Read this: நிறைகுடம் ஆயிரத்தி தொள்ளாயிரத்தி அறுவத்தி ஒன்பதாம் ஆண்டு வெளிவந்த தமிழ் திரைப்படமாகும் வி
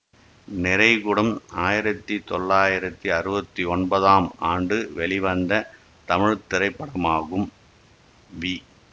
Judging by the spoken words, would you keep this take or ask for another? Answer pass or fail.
pass